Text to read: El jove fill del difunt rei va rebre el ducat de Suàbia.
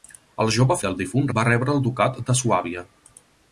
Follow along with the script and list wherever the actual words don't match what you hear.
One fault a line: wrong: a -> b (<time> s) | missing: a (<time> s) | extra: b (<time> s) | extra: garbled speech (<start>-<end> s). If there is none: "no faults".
missing: fill (0.8 s)
missing: rei (1.3 s)